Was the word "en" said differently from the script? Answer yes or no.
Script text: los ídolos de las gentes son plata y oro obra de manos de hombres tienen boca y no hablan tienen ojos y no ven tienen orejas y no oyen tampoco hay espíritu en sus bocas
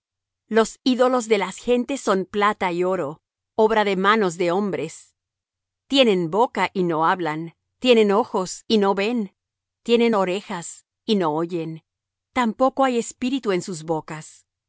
no